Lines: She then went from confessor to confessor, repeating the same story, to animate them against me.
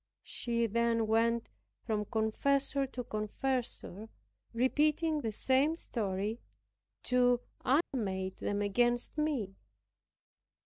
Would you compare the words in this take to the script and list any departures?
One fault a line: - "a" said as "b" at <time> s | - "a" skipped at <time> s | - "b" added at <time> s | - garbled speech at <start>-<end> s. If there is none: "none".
none